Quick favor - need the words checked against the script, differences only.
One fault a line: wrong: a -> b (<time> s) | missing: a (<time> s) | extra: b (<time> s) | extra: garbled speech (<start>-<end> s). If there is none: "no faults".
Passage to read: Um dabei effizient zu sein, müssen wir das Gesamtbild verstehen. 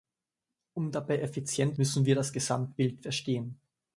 missing: zu sein (1.8 s)